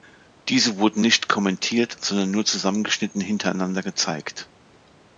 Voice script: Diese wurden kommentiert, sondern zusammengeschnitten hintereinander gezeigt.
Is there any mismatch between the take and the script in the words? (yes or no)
yes